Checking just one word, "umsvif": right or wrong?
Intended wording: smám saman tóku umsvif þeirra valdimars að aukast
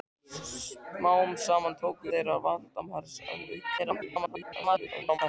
wrong